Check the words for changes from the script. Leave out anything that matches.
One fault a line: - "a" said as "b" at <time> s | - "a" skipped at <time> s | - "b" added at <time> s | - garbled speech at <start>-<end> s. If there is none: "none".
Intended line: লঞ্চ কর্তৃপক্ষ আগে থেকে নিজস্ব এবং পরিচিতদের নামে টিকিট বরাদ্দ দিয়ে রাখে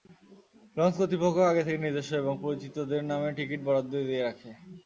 none